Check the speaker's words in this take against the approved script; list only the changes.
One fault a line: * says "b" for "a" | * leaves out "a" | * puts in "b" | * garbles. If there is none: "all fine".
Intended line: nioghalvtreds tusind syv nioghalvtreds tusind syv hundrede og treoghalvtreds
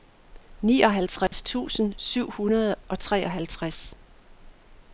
* leaves out "nioghalvtreds tusind syv"